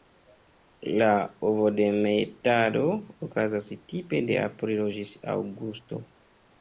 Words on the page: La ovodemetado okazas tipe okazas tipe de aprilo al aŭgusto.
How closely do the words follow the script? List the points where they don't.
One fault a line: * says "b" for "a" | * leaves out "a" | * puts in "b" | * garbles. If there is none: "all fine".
* leaves out "okazas tipe"
* says "ĝis" for "al"